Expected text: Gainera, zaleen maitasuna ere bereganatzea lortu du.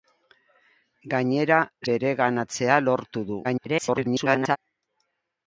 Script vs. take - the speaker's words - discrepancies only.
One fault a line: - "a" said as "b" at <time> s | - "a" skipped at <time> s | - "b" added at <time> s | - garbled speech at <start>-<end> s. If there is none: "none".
- "zaleen maitasuna ere" skipped at 1.6 s
- garbled speech at 3.4-4.6 s